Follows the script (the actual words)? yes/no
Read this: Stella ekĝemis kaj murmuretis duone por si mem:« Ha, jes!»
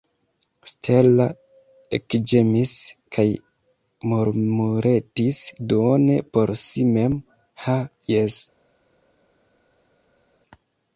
yes